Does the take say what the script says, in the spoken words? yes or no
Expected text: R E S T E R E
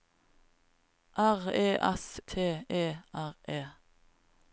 yes